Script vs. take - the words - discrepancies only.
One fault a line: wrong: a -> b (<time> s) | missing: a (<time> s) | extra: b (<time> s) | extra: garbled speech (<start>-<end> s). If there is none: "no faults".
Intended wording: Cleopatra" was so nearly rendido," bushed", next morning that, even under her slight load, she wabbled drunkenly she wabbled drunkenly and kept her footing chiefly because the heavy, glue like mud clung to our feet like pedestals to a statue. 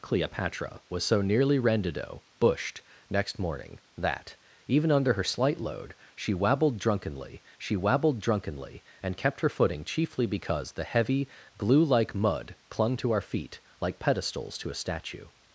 no faults